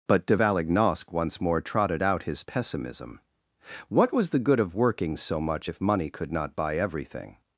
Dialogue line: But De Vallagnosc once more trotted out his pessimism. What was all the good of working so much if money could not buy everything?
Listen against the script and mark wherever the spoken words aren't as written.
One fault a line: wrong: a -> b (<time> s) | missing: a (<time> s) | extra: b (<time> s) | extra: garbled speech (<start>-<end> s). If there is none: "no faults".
missing: all (4.3 s)